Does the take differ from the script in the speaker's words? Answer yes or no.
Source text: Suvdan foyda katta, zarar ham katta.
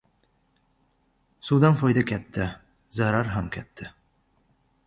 no